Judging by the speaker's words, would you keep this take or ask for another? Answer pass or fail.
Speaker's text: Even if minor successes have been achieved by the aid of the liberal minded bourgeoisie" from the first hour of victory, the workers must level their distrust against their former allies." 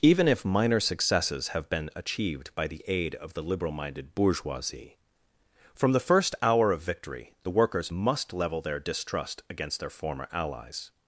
pass